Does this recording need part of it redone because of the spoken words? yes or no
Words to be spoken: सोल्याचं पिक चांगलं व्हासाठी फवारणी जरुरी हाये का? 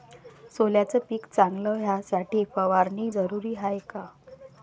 no